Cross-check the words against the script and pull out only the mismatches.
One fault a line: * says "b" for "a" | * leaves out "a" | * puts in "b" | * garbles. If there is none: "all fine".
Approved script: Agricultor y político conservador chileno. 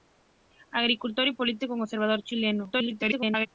* garbles